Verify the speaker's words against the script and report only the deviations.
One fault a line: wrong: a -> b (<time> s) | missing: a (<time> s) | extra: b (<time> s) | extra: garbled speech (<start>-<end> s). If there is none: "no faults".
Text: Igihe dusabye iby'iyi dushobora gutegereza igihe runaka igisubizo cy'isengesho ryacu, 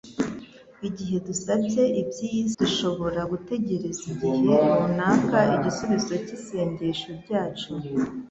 no faults